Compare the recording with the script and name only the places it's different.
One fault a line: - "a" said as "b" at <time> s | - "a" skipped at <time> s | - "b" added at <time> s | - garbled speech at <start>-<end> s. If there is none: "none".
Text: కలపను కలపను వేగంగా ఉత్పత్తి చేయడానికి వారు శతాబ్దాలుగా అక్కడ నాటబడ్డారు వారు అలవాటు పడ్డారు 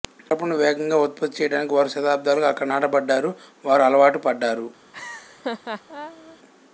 - "కలపను" skipped at 0.6 s